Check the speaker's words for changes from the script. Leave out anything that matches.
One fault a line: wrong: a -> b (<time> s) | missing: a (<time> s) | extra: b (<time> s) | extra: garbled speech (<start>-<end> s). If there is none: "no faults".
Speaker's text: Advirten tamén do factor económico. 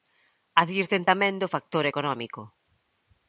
no faults